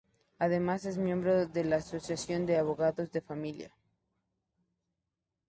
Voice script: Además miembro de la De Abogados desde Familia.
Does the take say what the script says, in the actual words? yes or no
no